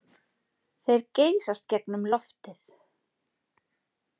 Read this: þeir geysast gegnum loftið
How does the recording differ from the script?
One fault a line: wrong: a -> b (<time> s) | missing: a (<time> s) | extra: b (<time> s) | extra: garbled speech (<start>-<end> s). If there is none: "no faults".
no faults